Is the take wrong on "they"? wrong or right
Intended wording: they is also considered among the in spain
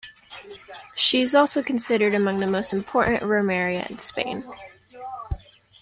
wrong